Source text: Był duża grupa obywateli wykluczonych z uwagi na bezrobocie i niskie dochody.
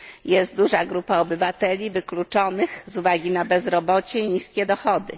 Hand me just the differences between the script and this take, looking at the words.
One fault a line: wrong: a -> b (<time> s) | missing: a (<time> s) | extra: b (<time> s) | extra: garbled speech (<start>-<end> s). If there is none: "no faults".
wrong: Był -> Jest (0.2 s)